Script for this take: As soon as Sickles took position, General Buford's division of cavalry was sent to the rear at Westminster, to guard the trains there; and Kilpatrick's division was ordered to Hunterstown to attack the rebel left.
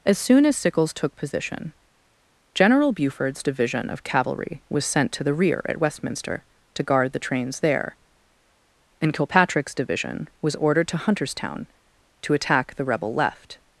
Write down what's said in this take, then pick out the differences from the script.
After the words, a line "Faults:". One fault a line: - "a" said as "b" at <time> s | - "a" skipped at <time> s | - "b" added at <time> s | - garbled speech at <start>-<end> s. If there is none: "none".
As soon as Sickles took position, General Buford's division of cavalry was sent to the rear at Westminster, to guard the trains there; and Kilpatrick's division was ordered to Hunterstown to attack the rebel left.
Faults:
none